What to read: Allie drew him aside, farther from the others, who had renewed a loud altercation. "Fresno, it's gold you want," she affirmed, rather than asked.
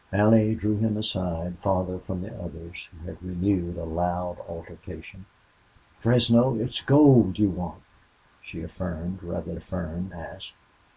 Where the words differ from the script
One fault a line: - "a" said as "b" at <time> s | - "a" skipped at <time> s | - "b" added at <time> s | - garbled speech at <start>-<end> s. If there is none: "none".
- "than" said as "affirmed" at 9.5 s